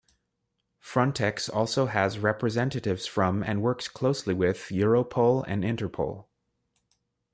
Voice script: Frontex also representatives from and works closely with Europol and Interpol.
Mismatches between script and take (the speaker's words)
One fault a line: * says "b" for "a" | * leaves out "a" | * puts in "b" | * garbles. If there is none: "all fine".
* puts in "has"